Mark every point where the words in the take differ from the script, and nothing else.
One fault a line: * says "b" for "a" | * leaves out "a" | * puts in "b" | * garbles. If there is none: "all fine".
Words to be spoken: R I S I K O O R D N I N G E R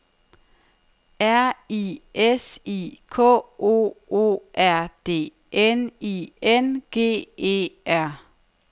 all fine